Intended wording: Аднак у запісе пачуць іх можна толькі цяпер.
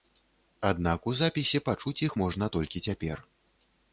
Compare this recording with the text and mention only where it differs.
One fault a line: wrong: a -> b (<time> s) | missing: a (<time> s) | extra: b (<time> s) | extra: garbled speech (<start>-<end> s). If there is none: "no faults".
no faults